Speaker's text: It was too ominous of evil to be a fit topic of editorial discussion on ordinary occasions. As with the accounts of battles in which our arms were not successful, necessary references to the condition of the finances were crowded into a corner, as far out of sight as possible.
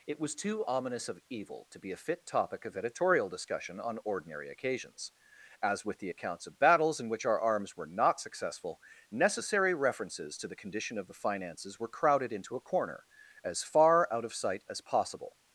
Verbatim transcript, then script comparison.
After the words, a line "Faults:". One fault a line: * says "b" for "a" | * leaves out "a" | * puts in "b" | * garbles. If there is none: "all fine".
It was too ominous of evil to be a fit topic of editorial discussion on ordinary occasions. As with the accounts of battles in which our arms were not successful, necessary references to the condition of the finances were crowded into a corner, as far out of sight as possible.
Faults:
all fine